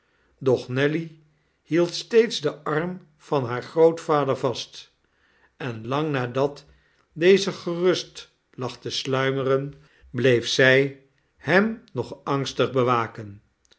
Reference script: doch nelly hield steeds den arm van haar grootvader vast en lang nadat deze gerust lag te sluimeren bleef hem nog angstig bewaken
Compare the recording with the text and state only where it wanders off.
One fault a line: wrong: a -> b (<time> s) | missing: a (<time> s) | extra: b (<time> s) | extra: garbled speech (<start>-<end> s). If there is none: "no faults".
extra: zij (10.5 s)